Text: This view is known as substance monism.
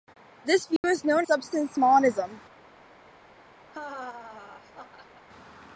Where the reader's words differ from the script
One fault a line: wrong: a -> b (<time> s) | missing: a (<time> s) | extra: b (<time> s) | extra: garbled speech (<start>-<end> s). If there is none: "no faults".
missing: as (1.3 s)